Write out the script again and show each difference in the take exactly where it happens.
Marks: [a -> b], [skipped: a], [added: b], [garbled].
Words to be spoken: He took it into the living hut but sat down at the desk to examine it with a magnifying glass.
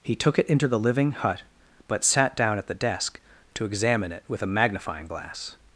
He took it into the living hut but sat down at the desk to examine it with a magnifying glass.